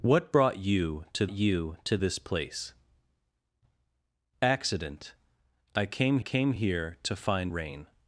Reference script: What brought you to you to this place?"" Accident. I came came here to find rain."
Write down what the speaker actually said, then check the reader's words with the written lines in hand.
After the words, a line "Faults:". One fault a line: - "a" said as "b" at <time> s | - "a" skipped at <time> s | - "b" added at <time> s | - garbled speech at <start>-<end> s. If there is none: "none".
What brought you to you to this place?"" Accident. I came came here to find rain."
Faults:
none